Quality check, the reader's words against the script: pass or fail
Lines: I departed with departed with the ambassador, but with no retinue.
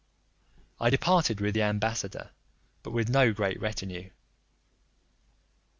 fail